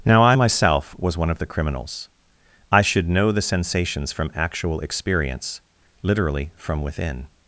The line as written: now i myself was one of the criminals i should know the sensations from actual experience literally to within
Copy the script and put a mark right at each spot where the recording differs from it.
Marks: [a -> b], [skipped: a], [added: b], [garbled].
now i myself was one of the criminals i should know the sensations from actual experience literally [to -> from] within